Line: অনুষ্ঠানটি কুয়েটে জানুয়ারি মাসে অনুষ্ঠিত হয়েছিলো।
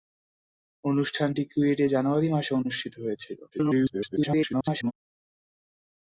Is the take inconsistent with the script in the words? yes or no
yes